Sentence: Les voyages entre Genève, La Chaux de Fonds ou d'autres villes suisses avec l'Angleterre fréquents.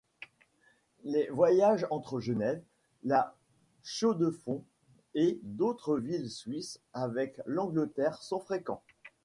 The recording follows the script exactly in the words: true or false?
false